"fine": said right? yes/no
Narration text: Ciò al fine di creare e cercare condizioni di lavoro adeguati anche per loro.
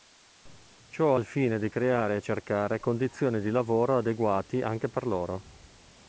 yes